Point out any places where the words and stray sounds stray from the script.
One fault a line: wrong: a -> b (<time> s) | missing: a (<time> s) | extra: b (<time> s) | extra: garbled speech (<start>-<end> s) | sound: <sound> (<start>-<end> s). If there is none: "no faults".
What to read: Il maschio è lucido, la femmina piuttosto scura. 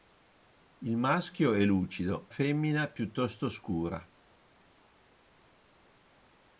missing: la (2.3 s)